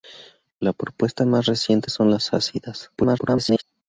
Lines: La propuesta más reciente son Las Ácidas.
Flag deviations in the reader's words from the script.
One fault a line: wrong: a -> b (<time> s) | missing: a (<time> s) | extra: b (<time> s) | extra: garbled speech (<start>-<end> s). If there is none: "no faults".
extra: garbled speech (3.0-3.6 s)